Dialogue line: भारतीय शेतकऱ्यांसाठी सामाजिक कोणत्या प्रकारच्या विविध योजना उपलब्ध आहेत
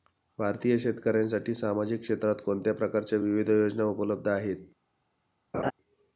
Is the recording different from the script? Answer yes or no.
yes